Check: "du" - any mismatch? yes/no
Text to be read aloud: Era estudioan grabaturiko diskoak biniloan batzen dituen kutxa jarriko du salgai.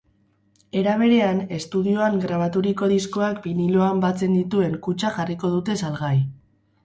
yes